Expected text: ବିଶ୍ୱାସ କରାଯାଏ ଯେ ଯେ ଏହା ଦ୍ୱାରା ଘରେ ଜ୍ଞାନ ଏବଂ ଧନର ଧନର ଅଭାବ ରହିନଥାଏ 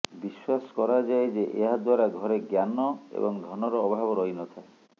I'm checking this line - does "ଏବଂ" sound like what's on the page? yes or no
yes